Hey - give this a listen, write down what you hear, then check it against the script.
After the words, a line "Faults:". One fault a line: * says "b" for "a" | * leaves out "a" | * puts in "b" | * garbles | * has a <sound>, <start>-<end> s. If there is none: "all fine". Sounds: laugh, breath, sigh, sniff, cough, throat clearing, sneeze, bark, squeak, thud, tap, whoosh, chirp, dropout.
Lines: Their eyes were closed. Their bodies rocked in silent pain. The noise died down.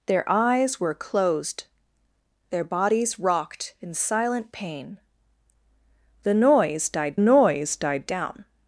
Their eyes were closed. Their bodies rocked in silent pain. The noise died noise died down.
Faults:
* puts in "noise died"